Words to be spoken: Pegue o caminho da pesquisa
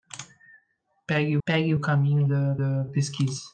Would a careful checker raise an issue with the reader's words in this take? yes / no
yes